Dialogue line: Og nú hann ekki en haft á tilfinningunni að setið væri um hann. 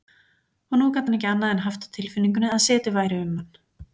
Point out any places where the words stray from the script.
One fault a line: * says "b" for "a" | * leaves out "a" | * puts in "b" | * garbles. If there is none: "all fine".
* puts in "gat"
* puts in "annað"